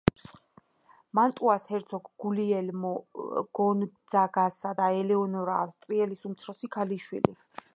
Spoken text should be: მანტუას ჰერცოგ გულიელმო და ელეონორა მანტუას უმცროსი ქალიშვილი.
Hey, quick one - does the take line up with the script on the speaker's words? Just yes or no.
no